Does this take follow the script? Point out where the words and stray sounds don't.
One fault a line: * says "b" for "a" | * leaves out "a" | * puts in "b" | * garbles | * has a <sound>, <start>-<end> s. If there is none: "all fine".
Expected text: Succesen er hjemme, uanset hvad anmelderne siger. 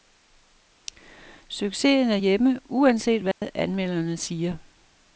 * has a dropout, 3.3-3.4 s